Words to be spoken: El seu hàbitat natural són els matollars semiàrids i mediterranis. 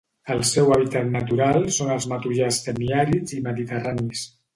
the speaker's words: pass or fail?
pass